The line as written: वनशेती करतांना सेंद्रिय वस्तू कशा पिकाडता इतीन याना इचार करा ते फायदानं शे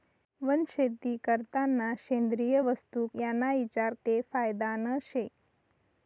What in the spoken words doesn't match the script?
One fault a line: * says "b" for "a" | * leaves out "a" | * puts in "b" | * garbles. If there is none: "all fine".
* leaves out "कशा पिकाडता इतीन"
* leaves out "करा"